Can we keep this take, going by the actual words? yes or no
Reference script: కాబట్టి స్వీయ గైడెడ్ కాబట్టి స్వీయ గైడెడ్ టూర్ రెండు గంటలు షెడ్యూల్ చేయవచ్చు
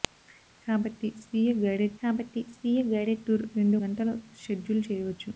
yes